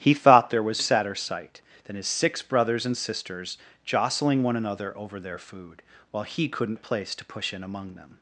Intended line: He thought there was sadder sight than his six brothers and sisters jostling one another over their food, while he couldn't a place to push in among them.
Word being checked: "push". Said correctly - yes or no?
yes